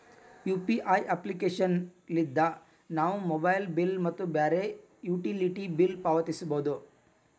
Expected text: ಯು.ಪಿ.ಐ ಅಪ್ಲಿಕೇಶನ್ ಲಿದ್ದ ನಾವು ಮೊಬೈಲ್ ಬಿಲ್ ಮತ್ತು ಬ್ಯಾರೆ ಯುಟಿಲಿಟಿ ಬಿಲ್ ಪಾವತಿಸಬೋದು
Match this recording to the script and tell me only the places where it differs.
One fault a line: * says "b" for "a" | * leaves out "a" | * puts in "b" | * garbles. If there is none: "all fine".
all fine